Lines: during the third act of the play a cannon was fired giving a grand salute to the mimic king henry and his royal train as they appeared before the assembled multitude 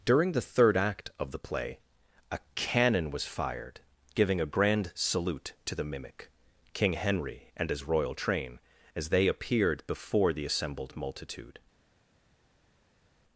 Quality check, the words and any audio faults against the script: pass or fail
pass